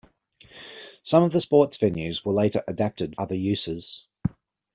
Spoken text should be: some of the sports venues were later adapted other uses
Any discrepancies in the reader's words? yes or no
no